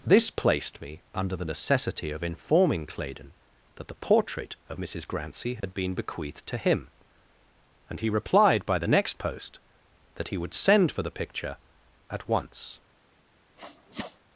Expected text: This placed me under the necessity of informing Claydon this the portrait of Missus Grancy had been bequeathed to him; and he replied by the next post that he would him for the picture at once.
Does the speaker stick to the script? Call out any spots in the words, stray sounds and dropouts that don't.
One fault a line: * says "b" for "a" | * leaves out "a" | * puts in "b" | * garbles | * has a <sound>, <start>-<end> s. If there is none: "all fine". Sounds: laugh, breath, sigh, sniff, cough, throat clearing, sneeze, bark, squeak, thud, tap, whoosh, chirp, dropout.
* says "that" for "this"
* has a dropout, 5.6-5.6 s
* says "send" for "him"
* has a sneeze, 13.6-14.2 s